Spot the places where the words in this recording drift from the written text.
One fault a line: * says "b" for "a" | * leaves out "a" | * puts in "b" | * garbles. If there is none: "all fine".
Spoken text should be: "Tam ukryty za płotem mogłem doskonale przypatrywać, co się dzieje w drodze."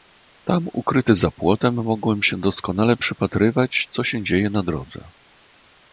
* puts in "się"
* says "na" for "w"